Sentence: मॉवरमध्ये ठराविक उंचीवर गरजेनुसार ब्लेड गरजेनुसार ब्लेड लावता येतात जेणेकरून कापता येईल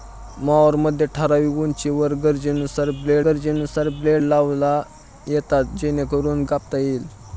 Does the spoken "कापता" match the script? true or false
true